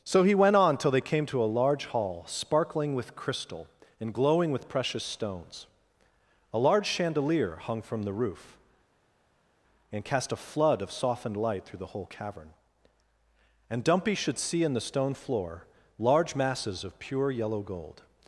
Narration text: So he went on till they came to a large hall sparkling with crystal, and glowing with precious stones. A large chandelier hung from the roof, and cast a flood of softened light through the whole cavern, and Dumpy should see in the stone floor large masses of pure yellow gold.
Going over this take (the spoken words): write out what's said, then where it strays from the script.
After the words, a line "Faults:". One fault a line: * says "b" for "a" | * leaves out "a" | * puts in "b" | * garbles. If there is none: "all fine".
So he went on till they came to a large hall sparkling with crystal, and glowing with precious stones. A large chandelier hung from the roof, and cast a flood of softened light through the whole cavern, and Dumpy should see in the stone floor large masses of pure yellow gold.
Faults:
all fine